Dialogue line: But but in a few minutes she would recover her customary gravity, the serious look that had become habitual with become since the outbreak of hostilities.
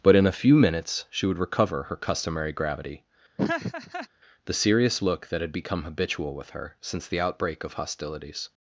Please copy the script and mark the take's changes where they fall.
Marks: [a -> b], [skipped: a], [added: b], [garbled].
But [skipped: but] in a few minutes she would recover her customary gravity, the serious look that had become habitual with [become -> her] since the outbreak of hostilities.